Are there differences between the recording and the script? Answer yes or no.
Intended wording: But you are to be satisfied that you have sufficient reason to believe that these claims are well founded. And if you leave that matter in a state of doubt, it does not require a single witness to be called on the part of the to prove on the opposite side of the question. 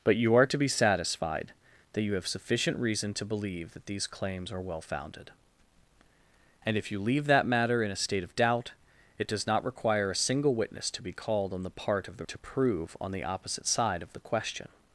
no